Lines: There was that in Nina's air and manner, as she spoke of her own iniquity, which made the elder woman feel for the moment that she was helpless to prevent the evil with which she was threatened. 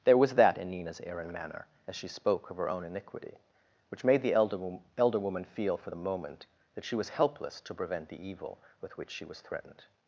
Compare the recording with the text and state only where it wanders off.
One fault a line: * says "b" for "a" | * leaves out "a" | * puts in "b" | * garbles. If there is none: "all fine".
* puts in "elder"